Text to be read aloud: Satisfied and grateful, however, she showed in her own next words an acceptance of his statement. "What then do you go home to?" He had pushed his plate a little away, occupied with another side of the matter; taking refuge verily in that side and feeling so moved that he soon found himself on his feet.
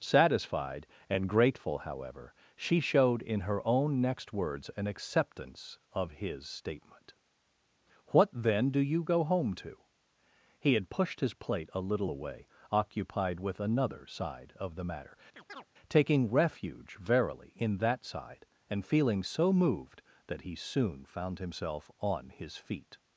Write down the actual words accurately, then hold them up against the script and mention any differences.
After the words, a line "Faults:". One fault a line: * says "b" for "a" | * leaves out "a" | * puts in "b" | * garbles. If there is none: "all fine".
Satisfied and grateful, however, she showed in her own next words an acceptance of his statement. "What then do you go home to?" He had pushed his plate a little away, occupied with another side of the matter; taking refuge verily in that side and feeling so moved that he soon found himself on his feet.
Faults:
all fine